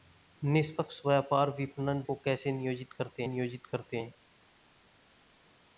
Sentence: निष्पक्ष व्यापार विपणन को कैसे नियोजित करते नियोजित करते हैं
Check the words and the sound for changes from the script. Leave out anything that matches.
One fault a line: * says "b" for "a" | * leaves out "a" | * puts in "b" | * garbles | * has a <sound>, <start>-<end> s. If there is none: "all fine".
all fine